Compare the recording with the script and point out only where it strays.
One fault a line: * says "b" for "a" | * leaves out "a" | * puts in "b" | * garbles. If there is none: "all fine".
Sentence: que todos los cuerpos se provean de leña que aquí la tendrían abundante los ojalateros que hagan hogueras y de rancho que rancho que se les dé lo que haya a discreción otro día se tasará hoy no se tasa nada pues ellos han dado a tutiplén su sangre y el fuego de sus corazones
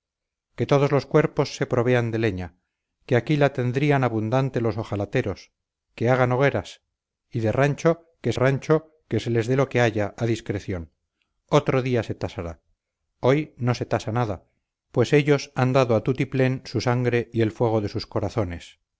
all fine